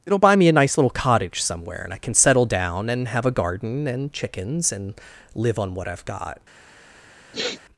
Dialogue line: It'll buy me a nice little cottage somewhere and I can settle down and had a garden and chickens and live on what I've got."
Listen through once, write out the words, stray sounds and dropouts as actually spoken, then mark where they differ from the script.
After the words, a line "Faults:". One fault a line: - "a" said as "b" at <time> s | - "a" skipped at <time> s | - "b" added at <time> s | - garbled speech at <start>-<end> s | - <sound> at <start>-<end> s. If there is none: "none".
It'll buy me a nice little cottage somewhere and I can settle down and have a garden and chickens and live on what I've got."
Faults:
- "had" said as "have" at 3.1 s
- sniff at 7.3-7.6 s